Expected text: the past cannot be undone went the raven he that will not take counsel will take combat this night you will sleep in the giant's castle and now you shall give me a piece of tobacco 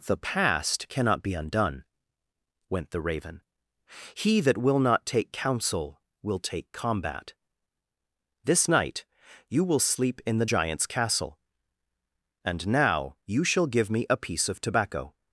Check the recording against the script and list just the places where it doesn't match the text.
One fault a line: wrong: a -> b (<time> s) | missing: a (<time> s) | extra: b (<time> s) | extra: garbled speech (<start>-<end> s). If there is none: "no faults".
no faults